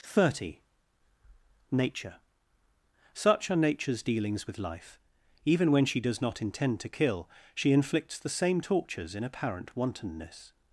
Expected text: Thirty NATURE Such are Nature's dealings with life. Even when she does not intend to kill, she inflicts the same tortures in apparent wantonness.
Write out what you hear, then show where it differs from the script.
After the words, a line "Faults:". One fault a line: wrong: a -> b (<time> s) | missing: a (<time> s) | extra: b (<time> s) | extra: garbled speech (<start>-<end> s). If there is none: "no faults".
Thirty NATURE Such are Nature's dealings with life. Even when she does not intend to kill, she inflicts the same tortures in apparent wantonness.
Faults:
no faults